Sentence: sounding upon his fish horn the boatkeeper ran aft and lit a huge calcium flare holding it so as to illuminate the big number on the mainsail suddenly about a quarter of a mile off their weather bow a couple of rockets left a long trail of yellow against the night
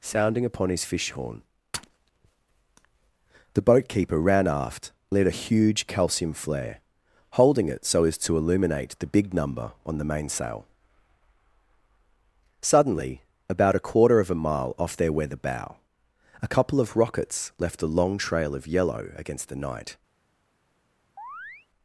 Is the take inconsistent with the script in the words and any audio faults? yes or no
yes